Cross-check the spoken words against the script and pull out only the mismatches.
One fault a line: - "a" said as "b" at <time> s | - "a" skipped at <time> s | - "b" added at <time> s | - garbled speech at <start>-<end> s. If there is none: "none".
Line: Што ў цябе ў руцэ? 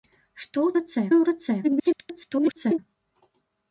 - "цябе" said as "руцэ" at 0.8 s
- garbled speech at 1.6-2.8 s